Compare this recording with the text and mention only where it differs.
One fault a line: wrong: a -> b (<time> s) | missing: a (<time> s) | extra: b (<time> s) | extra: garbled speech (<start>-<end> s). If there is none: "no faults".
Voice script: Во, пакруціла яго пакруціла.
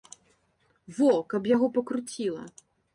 wrong: пакруціла -> каб (1.4 s)